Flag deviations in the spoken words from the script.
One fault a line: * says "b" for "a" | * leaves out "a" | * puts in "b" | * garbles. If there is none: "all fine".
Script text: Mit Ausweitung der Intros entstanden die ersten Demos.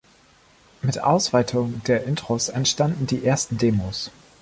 all fine